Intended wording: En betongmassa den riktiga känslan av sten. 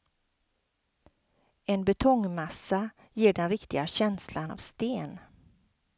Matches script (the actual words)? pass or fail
fail